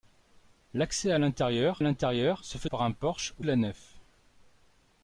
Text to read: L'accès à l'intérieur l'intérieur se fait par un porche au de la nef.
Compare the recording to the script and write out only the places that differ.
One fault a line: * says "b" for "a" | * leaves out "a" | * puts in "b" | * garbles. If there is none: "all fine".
all fine